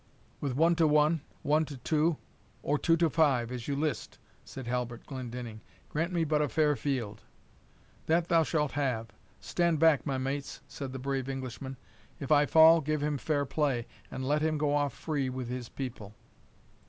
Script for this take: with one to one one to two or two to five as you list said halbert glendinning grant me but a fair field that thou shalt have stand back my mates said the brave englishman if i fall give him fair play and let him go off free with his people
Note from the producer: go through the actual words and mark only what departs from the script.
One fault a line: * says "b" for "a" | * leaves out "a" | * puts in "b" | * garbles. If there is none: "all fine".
all fine